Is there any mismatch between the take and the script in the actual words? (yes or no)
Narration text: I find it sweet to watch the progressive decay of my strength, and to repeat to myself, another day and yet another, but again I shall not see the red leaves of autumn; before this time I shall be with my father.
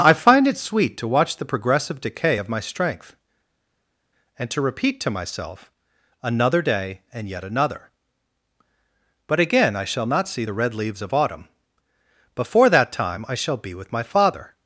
yes